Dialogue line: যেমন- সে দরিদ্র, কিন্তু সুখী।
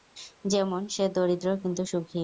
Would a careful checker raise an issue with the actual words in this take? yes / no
no